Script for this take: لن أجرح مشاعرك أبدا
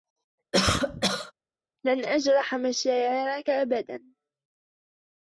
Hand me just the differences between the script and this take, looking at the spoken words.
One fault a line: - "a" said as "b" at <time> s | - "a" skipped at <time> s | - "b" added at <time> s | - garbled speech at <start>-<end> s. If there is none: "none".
none